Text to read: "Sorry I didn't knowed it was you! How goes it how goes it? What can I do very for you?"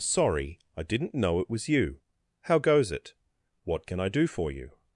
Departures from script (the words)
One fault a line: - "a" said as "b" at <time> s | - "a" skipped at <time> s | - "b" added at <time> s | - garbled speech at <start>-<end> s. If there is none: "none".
- "knowed" said as "know" at 1.1 s
- "how goes it" skipped at 3.1 s
- "very" skipped at 4.2 s